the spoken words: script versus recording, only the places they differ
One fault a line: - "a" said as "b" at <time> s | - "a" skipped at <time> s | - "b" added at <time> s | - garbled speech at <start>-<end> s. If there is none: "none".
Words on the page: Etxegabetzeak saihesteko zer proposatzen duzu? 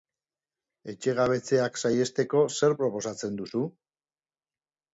none